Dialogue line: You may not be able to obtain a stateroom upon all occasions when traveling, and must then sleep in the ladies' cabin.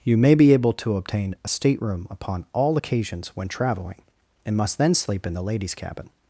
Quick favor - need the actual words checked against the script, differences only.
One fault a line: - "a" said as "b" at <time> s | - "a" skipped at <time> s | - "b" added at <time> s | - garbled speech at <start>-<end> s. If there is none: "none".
- "not" skipped at 0.3 s